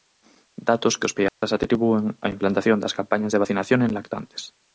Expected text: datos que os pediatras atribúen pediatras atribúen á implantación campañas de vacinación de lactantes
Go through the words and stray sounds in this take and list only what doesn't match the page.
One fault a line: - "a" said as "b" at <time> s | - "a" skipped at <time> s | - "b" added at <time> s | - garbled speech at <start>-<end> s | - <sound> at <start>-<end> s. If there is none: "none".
- dropout at 1.3-1.4 s
- "pediatras atribúen" skipped at 2.0 s
- "das" added at 2.8 s
- "de" said as "en" at 3.8 s